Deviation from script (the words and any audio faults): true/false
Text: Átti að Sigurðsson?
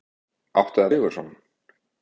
false